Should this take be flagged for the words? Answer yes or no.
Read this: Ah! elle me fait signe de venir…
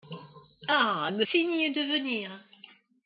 yes